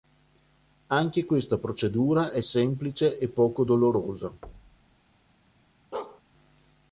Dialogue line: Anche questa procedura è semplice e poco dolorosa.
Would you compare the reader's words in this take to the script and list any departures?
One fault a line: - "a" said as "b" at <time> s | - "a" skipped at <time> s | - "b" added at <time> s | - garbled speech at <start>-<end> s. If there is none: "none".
none